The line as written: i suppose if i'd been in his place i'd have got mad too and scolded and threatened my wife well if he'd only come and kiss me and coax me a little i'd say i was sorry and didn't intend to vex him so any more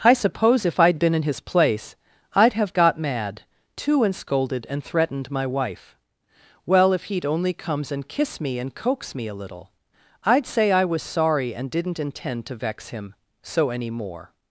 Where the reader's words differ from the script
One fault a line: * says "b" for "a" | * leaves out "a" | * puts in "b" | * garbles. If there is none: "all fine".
* says "comes" for "come"